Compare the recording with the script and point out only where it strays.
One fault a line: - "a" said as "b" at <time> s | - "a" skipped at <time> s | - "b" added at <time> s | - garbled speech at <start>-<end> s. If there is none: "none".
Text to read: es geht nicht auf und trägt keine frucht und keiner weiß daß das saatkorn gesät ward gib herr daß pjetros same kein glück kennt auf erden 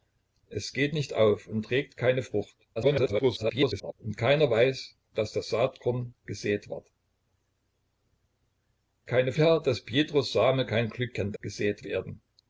- garbled speech at 2.8-3.9 s
- "gib" said as "keine" at 9.0 s
- "auf" said as "gesät" at 11.4 s